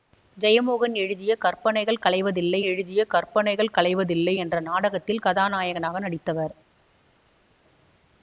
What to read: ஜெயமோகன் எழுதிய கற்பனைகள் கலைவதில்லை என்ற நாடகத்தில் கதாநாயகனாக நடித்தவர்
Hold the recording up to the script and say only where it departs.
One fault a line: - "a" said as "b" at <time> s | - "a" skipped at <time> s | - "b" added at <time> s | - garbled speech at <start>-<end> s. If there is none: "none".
- "எழுதிய கற்பனைகள் கலைவதில்லை" added at 2.6 s